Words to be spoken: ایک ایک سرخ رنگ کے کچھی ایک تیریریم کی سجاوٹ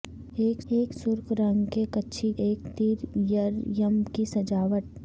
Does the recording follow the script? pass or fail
pass